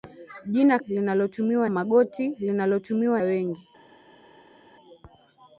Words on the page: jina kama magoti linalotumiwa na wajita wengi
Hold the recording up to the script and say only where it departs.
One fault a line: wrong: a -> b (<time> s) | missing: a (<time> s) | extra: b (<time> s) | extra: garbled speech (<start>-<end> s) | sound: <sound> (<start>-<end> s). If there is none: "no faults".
wrong: kama -> linalotumiwa (0.8 s)
missing: na wajita (3.2 s)